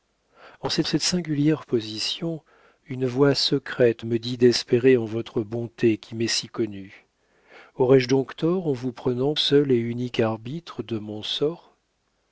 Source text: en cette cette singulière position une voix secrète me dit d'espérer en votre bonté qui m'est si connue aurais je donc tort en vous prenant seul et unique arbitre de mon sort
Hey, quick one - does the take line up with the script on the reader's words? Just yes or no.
yes